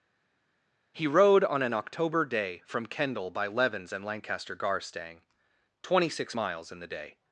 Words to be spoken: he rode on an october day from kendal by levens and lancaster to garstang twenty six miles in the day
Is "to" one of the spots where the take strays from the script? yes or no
yes